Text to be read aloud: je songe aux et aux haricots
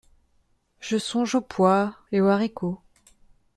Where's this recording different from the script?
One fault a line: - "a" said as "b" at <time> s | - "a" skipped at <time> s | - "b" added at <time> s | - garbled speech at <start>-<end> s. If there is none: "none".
- "pois" added at 1.4 s